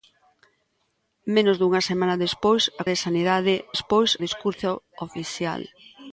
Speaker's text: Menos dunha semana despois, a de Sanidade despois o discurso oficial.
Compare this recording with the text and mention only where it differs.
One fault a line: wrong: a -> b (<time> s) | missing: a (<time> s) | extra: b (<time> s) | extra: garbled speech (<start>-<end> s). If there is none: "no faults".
no faults